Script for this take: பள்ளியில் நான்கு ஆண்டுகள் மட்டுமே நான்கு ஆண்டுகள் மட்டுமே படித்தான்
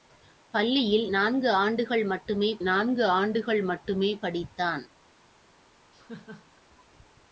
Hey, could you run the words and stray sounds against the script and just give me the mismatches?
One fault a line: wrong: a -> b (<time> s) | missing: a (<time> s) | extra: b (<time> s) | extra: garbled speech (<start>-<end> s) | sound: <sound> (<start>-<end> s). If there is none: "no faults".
sound: laugh (5.9-6.6 s)